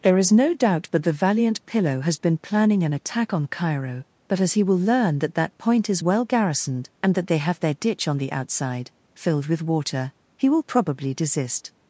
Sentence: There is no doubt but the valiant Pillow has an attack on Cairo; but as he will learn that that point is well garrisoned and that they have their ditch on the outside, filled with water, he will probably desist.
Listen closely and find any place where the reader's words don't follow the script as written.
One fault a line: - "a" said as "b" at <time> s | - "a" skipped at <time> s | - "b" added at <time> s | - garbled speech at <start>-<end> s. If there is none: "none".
- "been planning" added at 2.2 s